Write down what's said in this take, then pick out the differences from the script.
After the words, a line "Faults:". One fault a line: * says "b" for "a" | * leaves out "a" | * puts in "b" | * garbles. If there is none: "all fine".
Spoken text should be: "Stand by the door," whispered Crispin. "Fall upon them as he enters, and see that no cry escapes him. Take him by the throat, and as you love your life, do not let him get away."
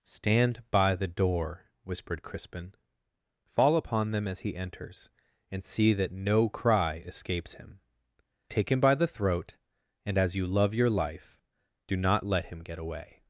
"Stand by the door," whispered Crispin. "Fall upon them as he enters, and see that no cry escapes him. Take him by the throat, and as you love your life, do not let him get away."
Faults:
all fine